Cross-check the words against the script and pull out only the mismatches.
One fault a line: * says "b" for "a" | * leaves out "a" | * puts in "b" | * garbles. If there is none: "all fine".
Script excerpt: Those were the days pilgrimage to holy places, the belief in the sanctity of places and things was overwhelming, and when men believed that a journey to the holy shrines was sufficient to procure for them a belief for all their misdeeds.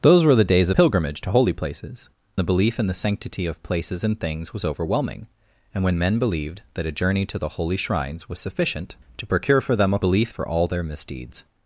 all fine